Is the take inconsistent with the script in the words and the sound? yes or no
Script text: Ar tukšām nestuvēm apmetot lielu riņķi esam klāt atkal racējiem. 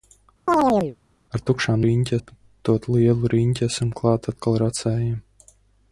yes